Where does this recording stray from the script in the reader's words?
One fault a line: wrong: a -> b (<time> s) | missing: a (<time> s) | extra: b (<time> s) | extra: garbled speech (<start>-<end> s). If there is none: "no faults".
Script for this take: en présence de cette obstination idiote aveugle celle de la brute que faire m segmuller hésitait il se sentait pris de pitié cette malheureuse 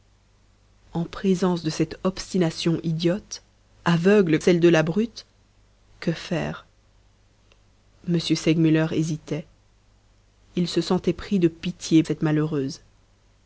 no faults